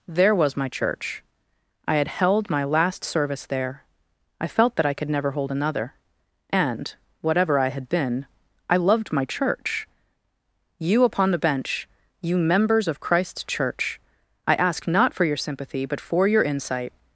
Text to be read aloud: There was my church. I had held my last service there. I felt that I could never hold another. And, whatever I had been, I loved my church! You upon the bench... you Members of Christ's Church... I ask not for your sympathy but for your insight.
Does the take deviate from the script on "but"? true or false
false